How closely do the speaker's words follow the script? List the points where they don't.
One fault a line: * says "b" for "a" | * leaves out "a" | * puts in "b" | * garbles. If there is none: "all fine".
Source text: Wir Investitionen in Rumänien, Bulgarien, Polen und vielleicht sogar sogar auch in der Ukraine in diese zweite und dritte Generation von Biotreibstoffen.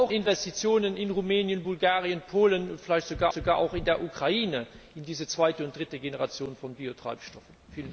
all fine